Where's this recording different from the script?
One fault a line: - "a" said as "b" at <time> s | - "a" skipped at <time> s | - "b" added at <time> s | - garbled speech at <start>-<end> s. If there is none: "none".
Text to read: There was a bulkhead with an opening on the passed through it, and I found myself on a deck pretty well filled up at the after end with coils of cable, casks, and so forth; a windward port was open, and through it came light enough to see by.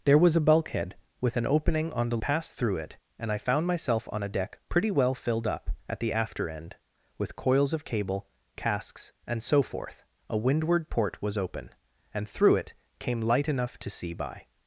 none